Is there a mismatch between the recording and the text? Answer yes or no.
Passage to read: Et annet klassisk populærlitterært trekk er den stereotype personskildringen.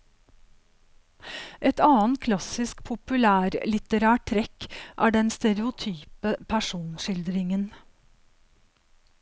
no